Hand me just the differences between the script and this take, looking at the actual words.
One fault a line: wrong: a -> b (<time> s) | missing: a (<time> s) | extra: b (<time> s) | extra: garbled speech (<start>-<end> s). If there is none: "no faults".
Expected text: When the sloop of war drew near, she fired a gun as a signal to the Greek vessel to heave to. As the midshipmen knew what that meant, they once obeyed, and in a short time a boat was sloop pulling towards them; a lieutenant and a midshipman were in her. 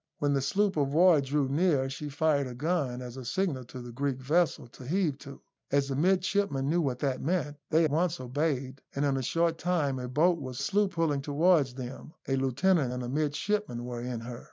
no faults